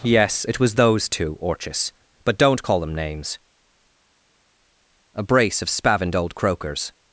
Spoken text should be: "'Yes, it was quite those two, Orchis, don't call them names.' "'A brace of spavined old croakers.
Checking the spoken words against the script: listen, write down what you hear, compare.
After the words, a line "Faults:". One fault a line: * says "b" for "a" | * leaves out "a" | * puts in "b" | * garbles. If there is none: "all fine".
"'Yes, it was those two, Orchis, but don't call them names.' "'A brace of spavined old croakers.
Faults:
* leaves out "quite"
* puts in "but"